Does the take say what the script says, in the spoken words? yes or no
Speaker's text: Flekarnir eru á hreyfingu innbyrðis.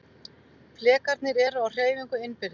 yes